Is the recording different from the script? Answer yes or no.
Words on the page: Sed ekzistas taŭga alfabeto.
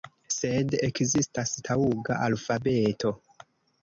no